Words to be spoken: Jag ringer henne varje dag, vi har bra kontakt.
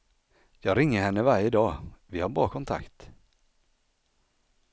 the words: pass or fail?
pass